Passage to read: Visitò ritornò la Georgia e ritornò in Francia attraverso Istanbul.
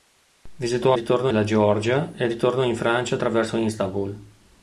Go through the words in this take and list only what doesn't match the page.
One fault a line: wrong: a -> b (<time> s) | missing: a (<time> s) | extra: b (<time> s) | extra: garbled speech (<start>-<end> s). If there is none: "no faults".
no faults